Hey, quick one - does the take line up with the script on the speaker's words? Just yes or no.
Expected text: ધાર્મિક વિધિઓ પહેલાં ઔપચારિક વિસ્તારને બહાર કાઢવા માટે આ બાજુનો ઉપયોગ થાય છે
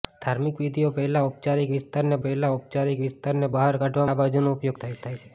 no